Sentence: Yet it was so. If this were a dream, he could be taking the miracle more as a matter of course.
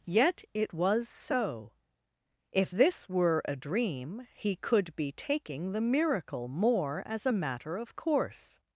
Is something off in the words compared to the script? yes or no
no